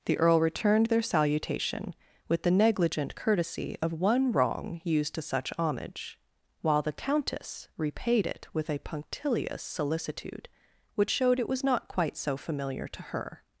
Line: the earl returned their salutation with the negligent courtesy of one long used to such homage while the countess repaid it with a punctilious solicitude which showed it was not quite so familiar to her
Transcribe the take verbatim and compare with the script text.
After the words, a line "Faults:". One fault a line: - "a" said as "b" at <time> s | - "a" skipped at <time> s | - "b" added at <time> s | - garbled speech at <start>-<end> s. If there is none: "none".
the earl returned their salutation with the negligent courtesy of one wrong used to such homage while the countess repaid it with a punctilious solicitude which showed it was not quite so familiar to her
Faults:
- "long" said as "wrong" at 4.3 s